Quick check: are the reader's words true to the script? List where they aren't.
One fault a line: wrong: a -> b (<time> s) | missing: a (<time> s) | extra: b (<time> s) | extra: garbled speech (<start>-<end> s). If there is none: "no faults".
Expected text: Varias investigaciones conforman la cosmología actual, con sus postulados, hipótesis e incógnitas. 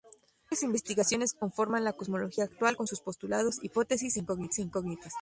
no faults